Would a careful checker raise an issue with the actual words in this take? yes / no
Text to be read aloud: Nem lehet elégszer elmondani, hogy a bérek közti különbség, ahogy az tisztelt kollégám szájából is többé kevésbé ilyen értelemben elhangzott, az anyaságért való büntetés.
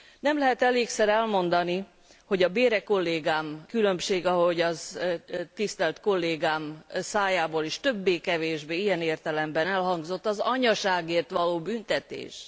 yes